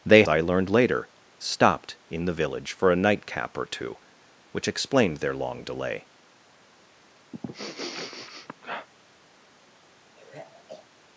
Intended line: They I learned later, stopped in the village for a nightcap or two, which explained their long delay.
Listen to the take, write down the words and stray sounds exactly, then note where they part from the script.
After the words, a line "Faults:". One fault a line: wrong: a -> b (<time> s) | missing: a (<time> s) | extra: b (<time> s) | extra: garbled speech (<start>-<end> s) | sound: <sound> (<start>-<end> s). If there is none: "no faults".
They I learned later, stopped in the village for a nightcap or two, which explained their long delay.
Faults:
sound: sniff (7.3-8.9 s)
sound: sigh (10.2-10.9 s)